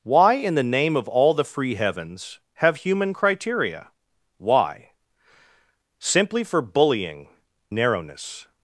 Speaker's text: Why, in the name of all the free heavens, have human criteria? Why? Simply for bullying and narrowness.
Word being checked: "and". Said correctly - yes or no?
no